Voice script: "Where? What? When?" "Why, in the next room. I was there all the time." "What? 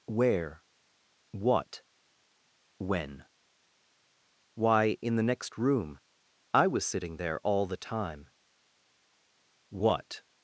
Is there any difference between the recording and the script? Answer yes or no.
yes